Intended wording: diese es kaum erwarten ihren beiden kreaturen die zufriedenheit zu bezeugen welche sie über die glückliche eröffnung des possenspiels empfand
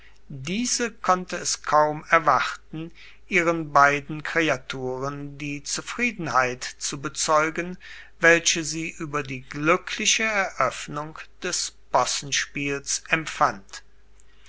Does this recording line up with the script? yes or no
no